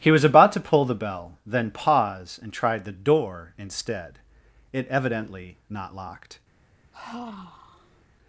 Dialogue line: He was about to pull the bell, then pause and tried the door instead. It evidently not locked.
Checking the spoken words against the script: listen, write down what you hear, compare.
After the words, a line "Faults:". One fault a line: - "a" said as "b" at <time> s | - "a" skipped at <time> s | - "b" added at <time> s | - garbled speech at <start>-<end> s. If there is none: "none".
He was about to pull the bell, then pause and tried the door instead. It evidently not locked.
Faults:
none